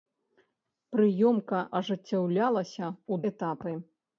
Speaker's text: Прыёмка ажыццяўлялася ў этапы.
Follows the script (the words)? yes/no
yes